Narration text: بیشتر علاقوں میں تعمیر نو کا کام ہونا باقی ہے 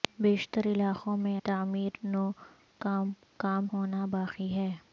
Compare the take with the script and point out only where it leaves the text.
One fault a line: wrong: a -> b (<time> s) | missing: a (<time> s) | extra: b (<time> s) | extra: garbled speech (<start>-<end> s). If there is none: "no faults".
no faults